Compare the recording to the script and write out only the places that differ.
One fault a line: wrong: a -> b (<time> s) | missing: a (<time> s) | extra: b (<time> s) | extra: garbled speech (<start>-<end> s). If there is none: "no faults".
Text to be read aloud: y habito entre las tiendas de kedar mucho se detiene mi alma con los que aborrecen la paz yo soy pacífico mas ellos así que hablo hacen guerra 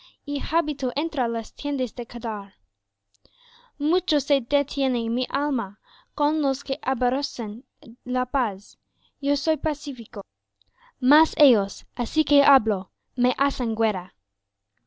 extra: me (13.2 s)